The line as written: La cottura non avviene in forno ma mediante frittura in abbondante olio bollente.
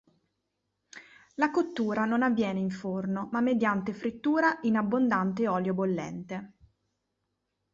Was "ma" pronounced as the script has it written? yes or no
yes